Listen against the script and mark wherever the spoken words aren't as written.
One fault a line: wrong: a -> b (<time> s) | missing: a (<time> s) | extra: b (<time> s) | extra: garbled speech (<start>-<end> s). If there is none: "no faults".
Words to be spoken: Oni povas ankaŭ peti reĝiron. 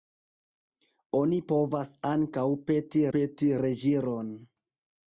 extra: peti (3.2 s)